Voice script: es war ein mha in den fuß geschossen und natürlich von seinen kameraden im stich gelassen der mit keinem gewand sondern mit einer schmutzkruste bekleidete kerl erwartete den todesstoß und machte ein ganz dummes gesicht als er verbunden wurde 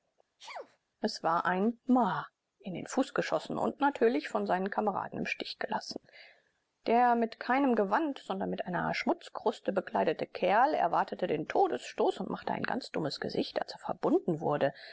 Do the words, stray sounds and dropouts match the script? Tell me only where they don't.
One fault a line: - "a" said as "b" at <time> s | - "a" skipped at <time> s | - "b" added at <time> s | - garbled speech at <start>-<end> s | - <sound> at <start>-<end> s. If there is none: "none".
- sneeze at 0.4-0.8 s